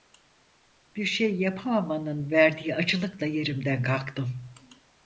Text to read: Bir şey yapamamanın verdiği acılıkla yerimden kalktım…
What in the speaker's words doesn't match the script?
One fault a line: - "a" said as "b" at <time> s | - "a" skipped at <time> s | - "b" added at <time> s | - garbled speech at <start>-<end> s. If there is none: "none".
none